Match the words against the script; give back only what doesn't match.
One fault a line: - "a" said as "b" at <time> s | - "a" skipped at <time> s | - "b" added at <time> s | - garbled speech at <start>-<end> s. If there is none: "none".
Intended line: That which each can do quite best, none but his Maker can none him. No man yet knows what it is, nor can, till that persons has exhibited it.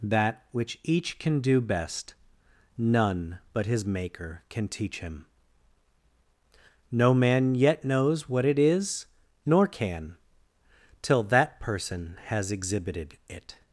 - "quite" skipped at 1.6 s
- "none" said as "teach" at 4.7 s
- "persons" said as "person" at 11.6 s